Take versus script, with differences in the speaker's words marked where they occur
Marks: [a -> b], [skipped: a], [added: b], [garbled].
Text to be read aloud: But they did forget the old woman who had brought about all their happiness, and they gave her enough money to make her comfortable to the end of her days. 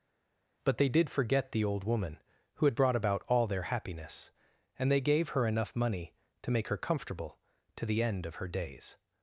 But they did forget the old woman who had brought about all their happiness, and they gave her enough money to make her comfortable to the end of her days.